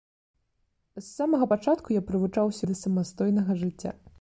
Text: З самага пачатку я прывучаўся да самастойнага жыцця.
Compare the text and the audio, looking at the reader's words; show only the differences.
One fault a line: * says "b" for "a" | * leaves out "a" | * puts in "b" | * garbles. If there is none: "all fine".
all fine